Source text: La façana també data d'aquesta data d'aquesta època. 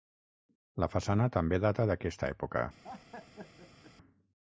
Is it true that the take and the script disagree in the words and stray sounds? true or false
true